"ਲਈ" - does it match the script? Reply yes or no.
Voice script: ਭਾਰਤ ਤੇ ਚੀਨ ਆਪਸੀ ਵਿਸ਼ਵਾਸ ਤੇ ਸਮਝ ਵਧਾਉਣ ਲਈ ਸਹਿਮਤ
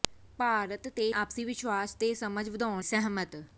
no